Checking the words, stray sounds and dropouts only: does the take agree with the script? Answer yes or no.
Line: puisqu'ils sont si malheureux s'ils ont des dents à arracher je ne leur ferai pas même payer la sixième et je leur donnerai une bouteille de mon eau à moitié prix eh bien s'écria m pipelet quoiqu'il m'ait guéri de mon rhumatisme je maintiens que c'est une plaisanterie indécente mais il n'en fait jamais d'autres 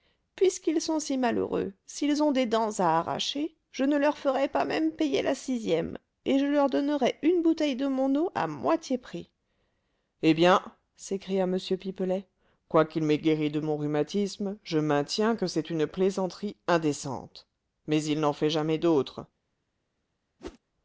no